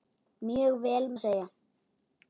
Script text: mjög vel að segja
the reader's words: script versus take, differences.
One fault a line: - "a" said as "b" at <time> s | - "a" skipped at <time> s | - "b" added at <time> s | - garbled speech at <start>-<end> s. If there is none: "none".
none